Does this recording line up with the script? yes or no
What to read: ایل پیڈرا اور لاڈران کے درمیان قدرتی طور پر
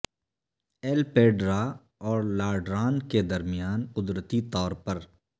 yes